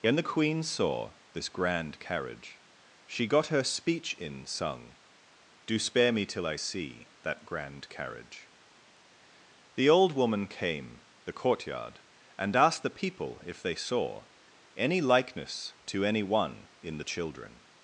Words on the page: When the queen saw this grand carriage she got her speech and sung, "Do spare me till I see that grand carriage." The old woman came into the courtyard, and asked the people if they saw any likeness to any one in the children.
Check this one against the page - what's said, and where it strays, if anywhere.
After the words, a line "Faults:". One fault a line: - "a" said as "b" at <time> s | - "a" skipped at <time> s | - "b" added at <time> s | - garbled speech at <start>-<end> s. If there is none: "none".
When the queen saw this grand carriage she got her speech in sung, "Do spare me till I see that grand carriage." The old woman came the courtyard, and asked the people if they saw any likeness to any one in the children.
Faults:
- "and" said as "in" at 4.2 s
- "into" skipped at 11.0 s